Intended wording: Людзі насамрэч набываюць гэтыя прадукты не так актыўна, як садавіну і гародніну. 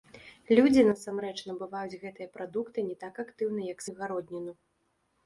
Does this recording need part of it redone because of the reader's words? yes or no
yes